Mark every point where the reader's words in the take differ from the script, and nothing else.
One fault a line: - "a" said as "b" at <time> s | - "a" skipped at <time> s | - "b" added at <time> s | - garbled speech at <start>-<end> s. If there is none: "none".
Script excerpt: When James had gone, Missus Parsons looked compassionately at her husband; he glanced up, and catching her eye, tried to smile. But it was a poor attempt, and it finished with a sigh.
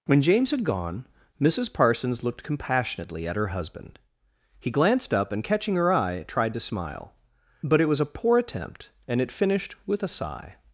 none